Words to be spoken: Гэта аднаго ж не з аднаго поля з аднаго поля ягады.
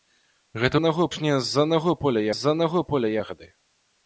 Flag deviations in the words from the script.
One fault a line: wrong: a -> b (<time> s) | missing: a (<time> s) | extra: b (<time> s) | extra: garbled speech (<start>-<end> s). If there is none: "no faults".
no faults